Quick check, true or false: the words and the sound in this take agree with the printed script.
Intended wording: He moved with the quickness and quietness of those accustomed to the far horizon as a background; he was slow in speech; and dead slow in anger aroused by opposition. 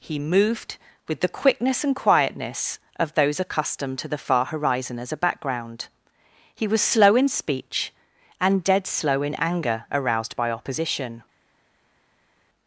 true